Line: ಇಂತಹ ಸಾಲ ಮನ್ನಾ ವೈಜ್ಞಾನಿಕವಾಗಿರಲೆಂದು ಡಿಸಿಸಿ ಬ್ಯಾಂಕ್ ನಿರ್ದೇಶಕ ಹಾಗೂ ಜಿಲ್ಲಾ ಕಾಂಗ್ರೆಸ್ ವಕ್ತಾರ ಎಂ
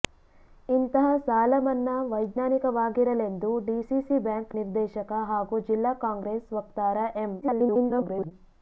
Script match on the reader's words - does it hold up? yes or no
no